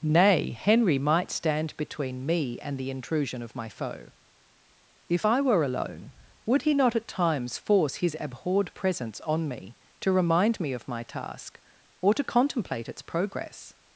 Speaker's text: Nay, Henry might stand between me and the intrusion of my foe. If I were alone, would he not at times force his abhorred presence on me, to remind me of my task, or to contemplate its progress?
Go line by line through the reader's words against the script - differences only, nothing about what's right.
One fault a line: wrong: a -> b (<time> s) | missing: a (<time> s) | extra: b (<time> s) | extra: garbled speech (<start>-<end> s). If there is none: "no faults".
no faults